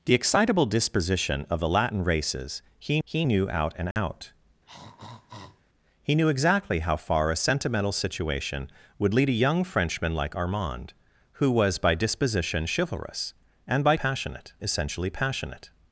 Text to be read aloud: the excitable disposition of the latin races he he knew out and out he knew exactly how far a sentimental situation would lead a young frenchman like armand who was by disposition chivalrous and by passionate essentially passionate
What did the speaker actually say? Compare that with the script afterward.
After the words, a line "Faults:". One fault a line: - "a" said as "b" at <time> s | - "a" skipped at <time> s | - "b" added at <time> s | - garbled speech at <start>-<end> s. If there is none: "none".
the excitable disposition of the latin races he he knew out and out he knew exactly how far a sentimental situation would lead a young frenchman like armand who was by disposition chivalrous and by passionate essentially passionate
Faults:
none